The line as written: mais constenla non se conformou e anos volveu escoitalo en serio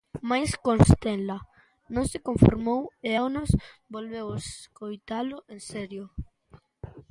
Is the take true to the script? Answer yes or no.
yes